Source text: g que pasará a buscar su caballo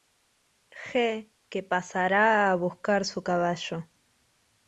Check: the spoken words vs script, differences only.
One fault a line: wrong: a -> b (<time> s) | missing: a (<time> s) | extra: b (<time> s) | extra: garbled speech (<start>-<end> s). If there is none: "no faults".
no faults